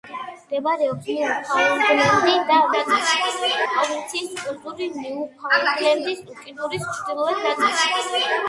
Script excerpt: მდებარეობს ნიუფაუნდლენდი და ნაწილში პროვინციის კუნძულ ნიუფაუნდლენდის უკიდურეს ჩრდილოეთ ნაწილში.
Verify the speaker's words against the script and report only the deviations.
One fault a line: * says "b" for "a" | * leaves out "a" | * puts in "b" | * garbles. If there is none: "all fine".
all fine